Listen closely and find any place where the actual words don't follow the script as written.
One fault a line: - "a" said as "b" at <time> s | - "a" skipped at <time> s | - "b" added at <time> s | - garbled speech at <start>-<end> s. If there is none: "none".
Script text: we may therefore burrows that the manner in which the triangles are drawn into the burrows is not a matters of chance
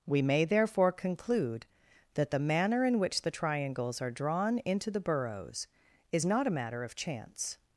- "burrows" said as "conclude" at 0.9 s
- "matters" said as "matter" at 6.5 s